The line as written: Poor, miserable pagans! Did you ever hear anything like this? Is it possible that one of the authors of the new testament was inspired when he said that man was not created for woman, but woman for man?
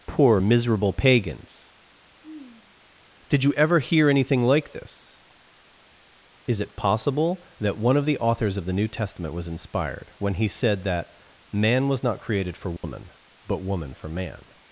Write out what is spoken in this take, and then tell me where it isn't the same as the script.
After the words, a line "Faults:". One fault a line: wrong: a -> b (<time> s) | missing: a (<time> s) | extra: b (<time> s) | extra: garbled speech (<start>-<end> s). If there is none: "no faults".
Poor, miserable pagans! Did you ever hear anything like this? Is it possible that one of the authors of the new testament was inspired when he said that man was not created for woman, but woman for man?
Faults:
no faults